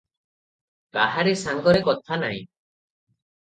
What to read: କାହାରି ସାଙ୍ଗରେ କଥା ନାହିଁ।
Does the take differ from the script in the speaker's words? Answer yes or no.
no